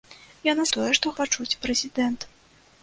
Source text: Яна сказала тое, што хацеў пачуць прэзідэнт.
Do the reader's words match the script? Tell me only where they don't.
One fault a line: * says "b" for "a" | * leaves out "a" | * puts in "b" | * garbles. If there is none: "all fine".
* leaves out "сказала"
* leaves out "хацеў"